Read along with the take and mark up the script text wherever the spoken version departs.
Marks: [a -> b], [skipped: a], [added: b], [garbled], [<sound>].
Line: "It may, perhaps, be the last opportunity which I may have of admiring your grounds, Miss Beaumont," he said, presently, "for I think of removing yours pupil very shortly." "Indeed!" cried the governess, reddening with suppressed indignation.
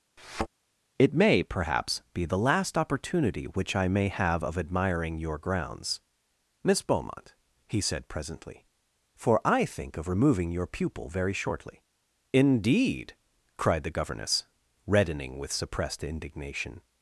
[thud] "It may, perhaps, be the last opportunity which I may have of admiring your grounds, Miss Beaumont," he said, presently, "for I think of removing [yours -> your] pupil very shortly." "Indeed!" cried the governess, reddening with suppressed indignation.